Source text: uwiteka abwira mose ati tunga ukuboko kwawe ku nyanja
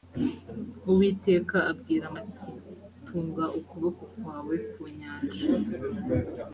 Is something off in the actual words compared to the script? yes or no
yes